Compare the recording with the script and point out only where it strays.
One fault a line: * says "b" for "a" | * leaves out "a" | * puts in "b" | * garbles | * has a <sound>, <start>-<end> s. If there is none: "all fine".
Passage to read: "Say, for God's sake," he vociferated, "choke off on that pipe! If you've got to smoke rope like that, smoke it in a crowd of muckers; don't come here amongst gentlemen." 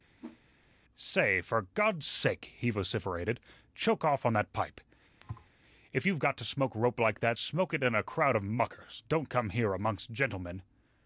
* has a whoosh, 0.2-0.4 s
* has a thud, 5.2-5.5 s